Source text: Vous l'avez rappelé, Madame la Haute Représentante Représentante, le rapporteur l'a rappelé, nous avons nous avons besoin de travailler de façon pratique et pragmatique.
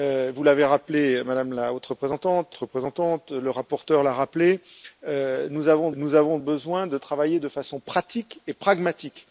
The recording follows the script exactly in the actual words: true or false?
true